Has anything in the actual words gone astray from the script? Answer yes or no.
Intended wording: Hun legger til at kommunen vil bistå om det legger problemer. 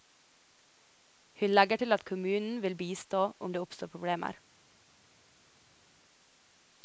yes